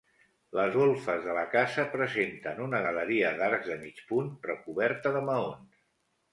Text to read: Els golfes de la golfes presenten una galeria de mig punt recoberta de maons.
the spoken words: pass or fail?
fail